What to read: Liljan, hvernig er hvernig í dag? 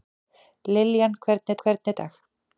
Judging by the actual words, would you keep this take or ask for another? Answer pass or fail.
pass